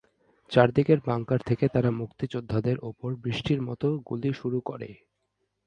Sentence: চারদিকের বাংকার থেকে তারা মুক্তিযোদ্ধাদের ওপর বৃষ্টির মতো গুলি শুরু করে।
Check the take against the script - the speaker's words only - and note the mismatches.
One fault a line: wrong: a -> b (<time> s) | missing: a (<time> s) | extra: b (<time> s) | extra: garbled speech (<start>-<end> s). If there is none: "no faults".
no faults